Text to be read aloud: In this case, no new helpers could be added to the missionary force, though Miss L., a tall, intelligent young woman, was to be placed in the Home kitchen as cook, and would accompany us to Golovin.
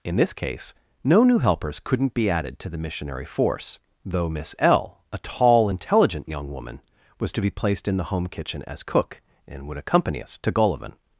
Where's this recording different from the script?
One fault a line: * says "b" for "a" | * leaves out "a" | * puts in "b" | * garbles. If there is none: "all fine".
* says "couldn't" for "could"